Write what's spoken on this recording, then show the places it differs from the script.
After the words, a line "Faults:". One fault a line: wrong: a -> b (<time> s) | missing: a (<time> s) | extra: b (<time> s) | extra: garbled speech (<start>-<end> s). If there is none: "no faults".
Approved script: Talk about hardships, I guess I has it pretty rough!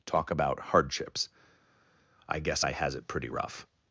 Talk about hardships, I guess I has it pretty rough!
Faults:
no faults